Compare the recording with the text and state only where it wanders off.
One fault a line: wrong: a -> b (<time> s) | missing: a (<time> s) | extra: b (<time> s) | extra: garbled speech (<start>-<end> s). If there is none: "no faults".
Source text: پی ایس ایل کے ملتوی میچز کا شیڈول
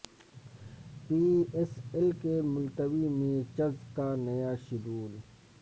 extra: نیا (4.2 s)